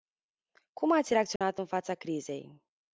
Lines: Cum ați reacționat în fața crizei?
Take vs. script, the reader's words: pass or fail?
pass